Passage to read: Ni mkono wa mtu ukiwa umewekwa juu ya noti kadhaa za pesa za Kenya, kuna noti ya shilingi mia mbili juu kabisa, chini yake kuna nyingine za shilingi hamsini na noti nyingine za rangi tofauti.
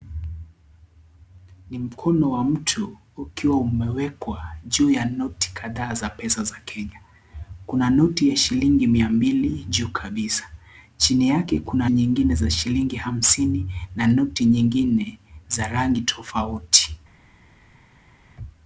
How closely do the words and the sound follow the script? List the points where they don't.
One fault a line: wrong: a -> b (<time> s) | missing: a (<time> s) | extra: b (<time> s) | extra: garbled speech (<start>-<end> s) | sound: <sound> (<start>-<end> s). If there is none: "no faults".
no faults